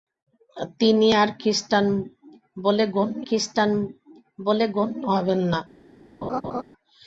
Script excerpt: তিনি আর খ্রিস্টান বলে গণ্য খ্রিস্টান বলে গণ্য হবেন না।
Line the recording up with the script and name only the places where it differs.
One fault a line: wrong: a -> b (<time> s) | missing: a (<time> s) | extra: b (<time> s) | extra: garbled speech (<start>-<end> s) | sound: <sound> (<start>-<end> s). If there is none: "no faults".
sound: laugh (6.2-6.6 s)